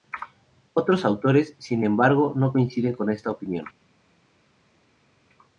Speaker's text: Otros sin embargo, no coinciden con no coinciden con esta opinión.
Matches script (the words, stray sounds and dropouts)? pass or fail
fail